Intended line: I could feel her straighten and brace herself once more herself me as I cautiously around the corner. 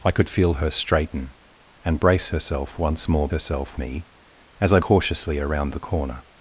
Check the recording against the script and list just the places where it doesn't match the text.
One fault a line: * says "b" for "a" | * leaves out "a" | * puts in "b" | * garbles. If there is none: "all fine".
all fine